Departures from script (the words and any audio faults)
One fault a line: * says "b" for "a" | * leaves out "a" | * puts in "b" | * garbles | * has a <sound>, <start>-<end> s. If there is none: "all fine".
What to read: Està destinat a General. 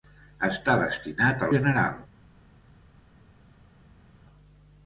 all fine